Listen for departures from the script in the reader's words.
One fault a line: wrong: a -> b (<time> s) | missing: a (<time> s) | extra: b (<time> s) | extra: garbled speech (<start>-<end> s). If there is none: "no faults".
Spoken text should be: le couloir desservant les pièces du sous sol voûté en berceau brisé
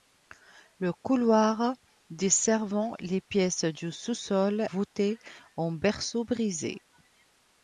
no faults